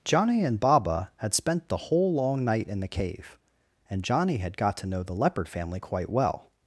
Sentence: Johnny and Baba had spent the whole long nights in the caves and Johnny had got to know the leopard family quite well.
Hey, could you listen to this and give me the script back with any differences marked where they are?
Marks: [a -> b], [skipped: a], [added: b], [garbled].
Johnny and Baba had spent the whole long [nights -> night] in the [caves -> cave] and Johnny had got to know the leopard family quite well.